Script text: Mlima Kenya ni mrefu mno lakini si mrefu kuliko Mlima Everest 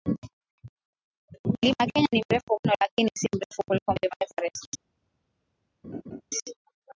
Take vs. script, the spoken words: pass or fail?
pass